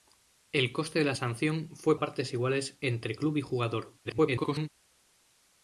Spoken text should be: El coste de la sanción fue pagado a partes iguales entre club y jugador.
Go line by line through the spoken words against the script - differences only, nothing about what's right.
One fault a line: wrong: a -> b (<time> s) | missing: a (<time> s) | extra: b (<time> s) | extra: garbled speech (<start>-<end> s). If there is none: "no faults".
missing: pagado (2.0 s)
extra: garbled speech (4.0-4.7 s)